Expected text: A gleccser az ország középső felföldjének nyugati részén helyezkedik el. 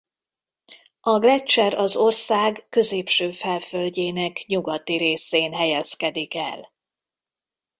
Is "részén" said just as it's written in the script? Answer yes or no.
yes